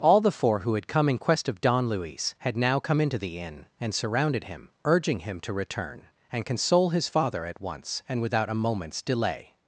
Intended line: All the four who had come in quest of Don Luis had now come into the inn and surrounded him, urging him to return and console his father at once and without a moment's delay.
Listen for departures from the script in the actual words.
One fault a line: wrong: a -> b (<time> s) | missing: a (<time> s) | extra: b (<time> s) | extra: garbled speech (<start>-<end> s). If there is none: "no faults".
no faults